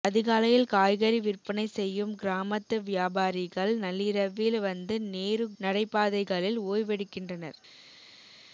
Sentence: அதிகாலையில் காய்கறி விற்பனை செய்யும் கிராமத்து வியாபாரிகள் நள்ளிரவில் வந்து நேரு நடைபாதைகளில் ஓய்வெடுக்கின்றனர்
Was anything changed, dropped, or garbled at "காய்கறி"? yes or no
no